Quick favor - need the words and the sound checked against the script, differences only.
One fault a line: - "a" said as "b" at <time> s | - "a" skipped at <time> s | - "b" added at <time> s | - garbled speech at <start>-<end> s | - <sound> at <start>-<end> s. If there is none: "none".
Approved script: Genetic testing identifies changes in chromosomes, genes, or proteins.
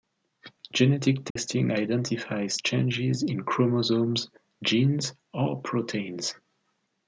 - dropout at 1.3-1.4 s